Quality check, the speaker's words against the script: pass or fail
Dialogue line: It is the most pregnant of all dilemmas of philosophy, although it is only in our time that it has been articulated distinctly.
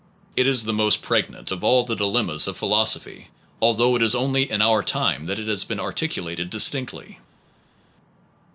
fail